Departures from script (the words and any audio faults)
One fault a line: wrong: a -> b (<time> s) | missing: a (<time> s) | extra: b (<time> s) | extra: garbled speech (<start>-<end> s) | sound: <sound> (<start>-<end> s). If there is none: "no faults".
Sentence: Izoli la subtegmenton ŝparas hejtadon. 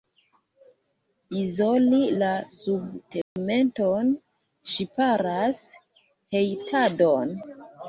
sound: dropout (3.2-3.4 s)